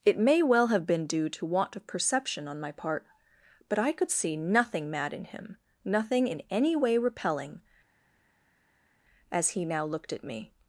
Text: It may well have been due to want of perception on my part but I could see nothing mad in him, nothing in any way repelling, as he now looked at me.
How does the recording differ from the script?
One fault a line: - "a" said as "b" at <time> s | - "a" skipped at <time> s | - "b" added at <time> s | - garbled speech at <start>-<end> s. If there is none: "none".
none